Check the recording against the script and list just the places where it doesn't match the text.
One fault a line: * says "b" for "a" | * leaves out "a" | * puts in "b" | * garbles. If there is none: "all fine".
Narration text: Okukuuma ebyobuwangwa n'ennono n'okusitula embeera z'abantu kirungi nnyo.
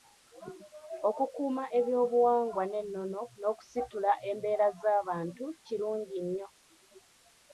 all fine